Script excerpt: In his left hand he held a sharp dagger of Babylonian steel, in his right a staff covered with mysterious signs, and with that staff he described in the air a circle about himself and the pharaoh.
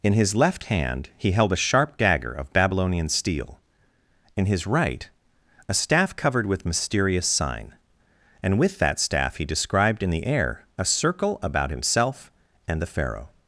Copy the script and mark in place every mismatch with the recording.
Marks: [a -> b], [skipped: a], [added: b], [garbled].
In his left hand he held a sharp dagger of Babylonian steel, in his right a staff covered with mysterious [signs, -> sign] and with that staff he described in the air a circle about himself and the pharaoh.